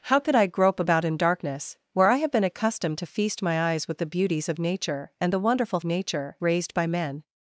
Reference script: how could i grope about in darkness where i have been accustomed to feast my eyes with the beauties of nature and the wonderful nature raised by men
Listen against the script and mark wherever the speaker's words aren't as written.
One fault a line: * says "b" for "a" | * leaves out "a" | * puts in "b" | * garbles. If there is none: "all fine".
all fine